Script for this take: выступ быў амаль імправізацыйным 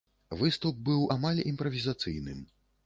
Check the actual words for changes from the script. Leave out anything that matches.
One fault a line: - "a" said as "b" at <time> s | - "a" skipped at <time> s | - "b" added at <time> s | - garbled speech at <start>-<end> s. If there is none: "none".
none